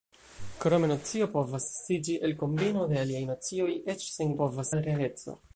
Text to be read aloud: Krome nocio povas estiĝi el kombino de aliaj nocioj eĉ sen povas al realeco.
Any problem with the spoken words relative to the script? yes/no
no